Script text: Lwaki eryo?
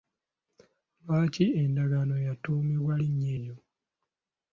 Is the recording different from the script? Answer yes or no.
yes